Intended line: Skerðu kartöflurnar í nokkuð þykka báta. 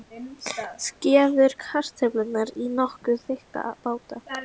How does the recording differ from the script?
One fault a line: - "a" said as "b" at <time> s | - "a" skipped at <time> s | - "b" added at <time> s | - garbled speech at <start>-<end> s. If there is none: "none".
none